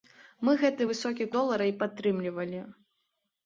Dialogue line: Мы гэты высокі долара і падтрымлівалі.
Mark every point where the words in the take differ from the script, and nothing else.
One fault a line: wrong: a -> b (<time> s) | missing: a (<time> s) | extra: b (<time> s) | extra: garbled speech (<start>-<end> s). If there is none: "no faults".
no faults